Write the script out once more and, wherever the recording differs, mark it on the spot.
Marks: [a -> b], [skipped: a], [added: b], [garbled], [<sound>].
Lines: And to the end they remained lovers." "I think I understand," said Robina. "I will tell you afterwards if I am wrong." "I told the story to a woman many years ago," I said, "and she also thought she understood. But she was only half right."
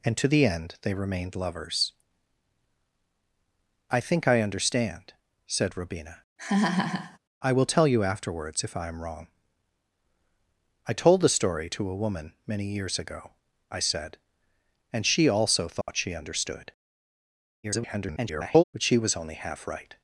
And to the end they remained lovers." "I think I understand," said Robina. [laugh] "I will tell you afterwards if I am wrong." "I told the story to a woman many years ago," I said, "and she also thought [dropout] she understood. [garbled] But she was only half right."